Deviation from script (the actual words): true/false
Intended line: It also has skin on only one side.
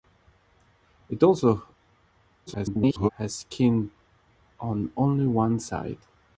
true